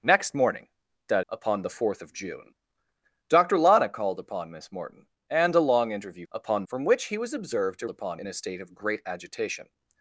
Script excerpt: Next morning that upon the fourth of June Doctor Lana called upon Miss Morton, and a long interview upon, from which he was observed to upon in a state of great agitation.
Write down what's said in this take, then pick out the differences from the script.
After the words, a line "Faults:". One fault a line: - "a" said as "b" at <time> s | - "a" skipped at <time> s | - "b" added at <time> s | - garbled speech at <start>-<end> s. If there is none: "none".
Next morning that upon the fourth of June Doctor Lana called upon Miss Morton, and a long interview upon, from which he was observed to upon in a state of great agitation.
Faults:
none